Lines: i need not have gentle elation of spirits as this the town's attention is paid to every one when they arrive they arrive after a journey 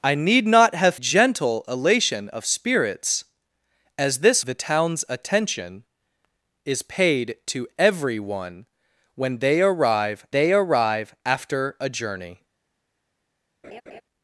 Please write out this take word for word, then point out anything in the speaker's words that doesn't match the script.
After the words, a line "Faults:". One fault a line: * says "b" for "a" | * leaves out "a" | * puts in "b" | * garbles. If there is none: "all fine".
i need not have gentle elation of spirits as this the town's attention is paid to every one when they arrive they arrive after a journey
Faults:
all fine